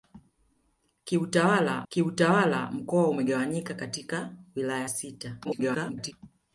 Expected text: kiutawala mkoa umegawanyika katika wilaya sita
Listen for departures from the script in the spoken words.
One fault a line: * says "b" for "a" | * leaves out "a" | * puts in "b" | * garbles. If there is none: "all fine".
* puts in "kiutawala"
* garbles